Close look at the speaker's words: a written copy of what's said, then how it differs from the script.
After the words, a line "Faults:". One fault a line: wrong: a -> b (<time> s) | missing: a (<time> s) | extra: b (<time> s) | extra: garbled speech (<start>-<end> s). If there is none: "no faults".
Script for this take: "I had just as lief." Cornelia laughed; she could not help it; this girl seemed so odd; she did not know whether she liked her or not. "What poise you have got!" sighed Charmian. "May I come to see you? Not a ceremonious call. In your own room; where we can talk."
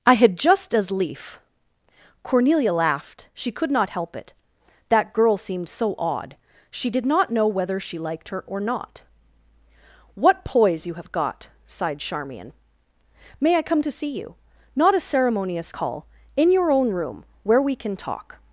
"I had just as lief." Cornelia laughed; she could not help it; that girl seemed so odd; she did not know whether she liked her or not. "What poise you have got!" sighed Charmian. "May I come to see you? Not a ceremonious call. In your own room; where we can talk."
Faults:
wrong: this -> that (4.9 s)